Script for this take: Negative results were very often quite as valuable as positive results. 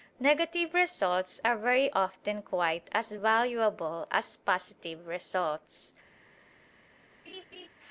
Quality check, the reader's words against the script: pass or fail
fail